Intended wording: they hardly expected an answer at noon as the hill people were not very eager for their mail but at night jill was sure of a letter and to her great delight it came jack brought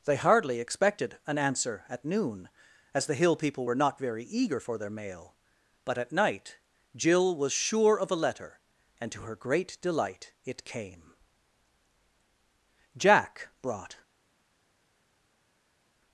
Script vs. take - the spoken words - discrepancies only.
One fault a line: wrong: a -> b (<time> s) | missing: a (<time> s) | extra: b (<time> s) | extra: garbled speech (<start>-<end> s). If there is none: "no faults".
no faults